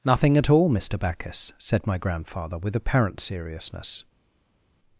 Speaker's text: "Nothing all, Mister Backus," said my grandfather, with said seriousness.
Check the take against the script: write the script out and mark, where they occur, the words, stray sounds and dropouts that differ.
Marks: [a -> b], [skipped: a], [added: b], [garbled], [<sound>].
"Nothing [added: at] all, Mister Backus," said my grandfather, with [said -> apparent] seriousness.